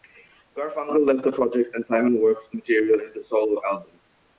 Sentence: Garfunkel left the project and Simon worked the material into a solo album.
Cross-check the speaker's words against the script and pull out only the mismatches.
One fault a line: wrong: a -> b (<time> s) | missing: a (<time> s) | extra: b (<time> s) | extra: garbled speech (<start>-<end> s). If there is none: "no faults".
no faults